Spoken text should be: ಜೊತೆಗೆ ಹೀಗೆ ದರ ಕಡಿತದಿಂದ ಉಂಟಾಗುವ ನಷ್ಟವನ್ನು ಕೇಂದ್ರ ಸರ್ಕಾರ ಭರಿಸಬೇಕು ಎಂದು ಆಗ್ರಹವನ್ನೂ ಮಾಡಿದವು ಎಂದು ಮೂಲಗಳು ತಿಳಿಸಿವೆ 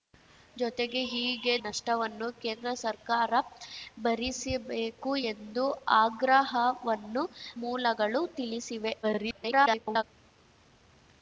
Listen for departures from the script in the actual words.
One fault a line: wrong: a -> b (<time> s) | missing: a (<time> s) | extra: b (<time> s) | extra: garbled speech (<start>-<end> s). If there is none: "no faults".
missing: ದರ ಕಡಿತದಿಂದ ಉಂಟಾಗುವ (1.5 s)
missing: ಮಾಡಿದವು ಎಂದು (7.2 s)
extra: garbled speech (9.0-10.0 s)